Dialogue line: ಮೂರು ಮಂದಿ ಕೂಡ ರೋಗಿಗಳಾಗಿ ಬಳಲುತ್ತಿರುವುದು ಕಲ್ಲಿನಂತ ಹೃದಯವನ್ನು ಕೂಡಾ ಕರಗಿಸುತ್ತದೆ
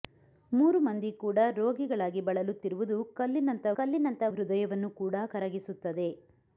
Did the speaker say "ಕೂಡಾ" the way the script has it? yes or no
yes